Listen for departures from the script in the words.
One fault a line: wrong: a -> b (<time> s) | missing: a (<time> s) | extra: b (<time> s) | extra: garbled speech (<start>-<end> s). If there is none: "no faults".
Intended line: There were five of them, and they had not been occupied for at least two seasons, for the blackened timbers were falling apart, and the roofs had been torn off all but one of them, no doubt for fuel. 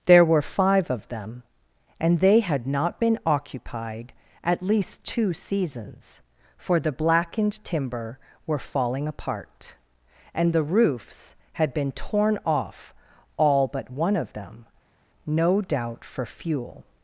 missing: for (4.1 s)
wrong: timbers -> timber (7.6 s)